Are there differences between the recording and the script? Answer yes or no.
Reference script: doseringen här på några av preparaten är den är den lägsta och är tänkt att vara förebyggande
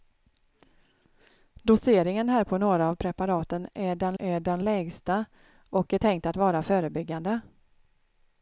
no